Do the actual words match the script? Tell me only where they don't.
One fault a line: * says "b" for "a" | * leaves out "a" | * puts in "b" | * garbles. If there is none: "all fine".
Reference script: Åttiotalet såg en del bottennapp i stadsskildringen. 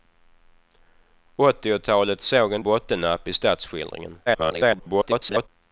* leaves out "del"
* garbles